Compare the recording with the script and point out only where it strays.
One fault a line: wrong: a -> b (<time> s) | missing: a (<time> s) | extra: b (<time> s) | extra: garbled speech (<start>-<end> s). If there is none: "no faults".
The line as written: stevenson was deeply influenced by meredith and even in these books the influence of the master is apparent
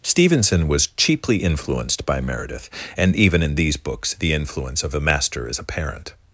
wrong: deeply -> cheaply (0.9 s)